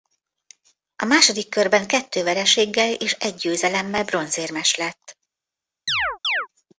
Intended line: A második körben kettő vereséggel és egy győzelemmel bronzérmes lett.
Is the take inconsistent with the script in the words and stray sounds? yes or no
yes